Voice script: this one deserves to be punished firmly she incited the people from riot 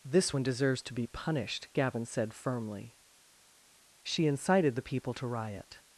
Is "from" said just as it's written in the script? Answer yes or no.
no